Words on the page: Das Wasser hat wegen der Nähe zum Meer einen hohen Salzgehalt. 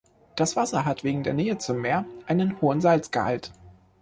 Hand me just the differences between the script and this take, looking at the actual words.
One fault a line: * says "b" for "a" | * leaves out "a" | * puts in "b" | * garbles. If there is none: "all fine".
all fine